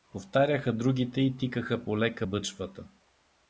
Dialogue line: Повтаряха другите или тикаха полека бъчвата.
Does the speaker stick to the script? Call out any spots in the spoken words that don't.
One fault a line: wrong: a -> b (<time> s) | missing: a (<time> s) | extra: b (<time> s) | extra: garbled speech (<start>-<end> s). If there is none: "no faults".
wrong: или -> и (1.2 s)